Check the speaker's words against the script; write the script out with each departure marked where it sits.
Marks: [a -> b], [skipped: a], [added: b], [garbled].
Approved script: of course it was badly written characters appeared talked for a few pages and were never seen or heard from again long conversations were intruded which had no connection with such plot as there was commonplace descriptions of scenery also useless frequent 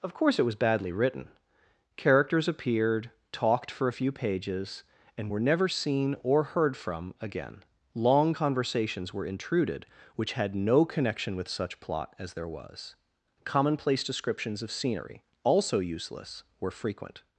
of course it was badly written characters appeared talked for a few pages and were never seen or heard from again long conversations were intruded which had no connection with such plot as there was commonplace descriptions of scenery also useless [added: were] frequent